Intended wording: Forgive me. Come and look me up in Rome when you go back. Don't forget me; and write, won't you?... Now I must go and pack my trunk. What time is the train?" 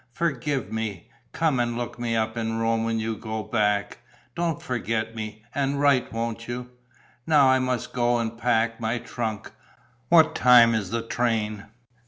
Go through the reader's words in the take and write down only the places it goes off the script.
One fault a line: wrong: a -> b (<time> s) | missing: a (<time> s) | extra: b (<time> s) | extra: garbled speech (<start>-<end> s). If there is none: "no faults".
no faults